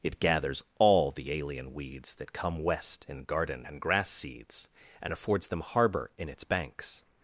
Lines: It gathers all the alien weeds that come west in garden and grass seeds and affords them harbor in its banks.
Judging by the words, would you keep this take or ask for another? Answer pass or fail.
pass